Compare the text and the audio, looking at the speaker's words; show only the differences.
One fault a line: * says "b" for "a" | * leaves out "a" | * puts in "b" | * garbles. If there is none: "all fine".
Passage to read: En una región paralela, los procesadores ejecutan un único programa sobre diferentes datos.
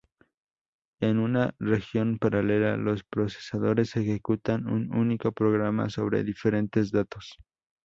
all fine